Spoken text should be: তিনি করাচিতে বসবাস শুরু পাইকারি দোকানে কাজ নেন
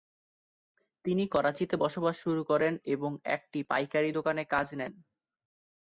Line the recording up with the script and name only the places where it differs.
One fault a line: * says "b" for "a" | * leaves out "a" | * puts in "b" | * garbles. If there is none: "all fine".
* puts in "করেন এবং একটি"